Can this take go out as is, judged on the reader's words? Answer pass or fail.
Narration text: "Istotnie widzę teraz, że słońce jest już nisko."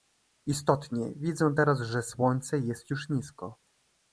pass